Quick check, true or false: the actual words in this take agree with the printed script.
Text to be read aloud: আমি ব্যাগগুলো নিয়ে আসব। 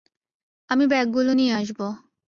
true